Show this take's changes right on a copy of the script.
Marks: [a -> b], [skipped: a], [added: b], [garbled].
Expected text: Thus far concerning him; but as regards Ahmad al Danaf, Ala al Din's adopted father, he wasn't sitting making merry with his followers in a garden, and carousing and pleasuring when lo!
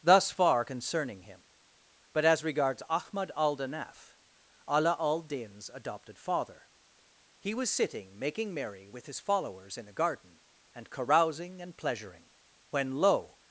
Thus far concerning him; but as regards Ahmad al Danaf, Ala al Din's adopted father, he [wasn't -> was] sitting making merry with his followers in a garden, and carousing and pleasuring when lo!